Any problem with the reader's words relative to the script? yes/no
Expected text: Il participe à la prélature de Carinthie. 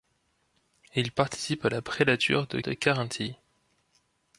yes